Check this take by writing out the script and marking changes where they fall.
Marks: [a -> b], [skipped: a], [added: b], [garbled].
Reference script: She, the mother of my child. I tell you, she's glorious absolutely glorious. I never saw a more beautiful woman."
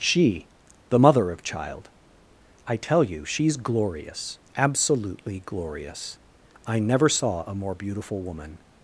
She, the mother of [skipped: my] child. I tell you, she's glorious absolutely glorious. I never saw a more beautiful woman."